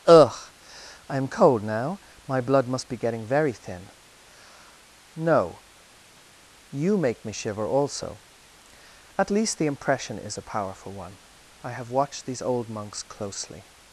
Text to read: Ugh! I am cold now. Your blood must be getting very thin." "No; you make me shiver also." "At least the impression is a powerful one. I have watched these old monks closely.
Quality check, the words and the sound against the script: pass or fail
fail